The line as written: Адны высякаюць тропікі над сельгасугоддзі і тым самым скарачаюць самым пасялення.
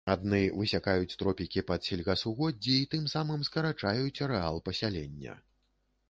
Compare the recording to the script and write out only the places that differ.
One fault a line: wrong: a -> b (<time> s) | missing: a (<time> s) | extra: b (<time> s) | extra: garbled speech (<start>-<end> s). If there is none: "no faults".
wrong: над -> пад (1.7 s)
wrong: самым -> арэал (4.3 s)